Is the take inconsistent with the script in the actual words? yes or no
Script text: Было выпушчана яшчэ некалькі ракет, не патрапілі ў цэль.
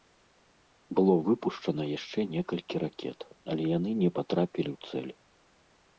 yes